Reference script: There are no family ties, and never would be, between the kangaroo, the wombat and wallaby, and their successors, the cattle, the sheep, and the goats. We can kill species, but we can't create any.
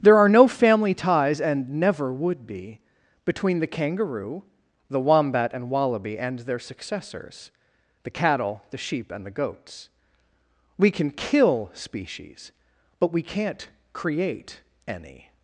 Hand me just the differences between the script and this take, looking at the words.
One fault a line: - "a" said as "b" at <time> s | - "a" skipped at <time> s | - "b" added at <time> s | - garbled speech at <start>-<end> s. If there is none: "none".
none